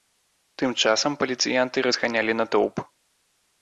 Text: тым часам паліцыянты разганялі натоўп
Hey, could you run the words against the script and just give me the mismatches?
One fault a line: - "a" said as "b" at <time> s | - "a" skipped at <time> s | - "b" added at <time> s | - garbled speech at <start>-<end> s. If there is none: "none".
none